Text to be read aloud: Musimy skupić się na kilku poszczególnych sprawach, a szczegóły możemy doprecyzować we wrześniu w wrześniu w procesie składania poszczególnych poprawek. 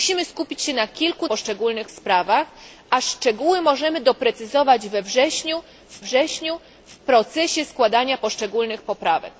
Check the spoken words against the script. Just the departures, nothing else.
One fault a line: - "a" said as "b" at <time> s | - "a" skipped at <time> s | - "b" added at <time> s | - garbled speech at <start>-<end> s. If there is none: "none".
none